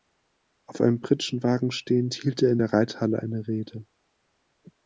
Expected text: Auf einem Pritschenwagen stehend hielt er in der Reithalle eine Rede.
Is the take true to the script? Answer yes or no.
yes